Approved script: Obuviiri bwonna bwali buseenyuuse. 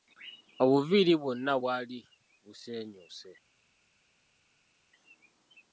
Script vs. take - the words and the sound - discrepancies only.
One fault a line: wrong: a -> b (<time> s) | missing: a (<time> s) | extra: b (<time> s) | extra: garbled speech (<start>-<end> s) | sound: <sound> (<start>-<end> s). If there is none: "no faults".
no faults